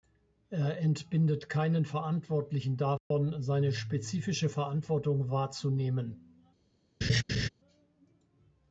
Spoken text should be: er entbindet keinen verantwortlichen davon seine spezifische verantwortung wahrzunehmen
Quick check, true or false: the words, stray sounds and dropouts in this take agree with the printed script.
false